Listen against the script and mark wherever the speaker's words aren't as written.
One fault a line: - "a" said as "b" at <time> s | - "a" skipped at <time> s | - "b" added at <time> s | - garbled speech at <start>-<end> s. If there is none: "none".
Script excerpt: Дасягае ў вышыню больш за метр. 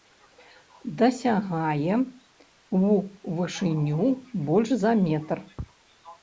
none